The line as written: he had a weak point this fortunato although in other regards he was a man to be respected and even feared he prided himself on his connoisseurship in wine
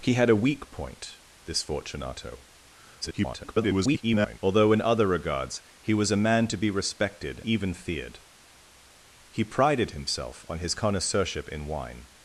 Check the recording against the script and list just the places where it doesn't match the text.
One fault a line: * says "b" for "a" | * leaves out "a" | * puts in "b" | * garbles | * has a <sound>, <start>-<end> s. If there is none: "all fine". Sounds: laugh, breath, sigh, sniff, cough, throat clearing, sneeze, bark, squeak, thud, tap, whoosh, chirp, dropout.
* garbles
* leaves out "and"